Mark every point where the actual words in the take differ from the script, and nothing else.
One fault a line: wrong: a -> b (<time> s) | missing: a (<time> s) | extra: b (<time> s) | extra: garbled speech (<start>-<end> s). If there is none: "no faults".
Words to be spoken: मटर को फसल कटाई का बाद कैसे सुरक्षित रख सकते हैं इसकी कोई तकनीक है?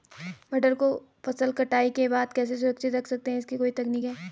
wrong: का -> के (1.9 s)